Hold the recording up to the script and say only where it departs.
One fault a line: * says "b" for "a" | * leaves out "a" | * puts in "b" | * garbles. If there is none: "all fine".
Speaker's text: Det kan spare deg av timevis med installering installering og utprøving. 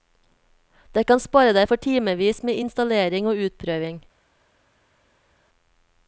* says "for" for "av"
* leaves out "installering"